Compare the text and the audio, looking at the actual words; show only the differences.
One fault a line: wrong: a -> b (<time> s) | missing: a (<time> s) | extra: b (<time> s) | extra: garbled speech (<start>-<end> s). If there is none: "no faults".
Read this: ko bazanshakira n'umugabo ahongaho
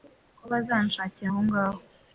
missing: n'umugabo (1.3 s)